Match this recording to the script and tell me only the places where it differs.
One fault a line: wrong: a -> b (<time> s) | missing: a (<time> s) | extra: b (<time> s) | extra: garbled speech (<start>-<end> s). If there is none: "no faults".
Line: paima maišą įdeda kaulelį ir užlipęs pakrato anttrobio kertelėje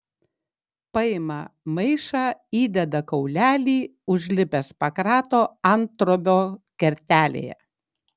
missing: ir (3.8 s)